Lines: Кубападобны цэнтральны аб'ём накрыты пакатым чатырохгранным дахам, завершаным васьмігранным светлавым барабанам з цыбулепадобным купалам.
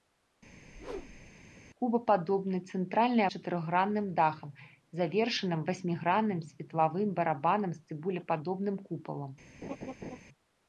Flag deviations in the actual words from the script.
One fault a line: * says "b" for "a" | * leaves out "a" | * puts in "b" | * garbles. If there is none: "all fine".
* leaves out "аб'ём накрыты пакатым"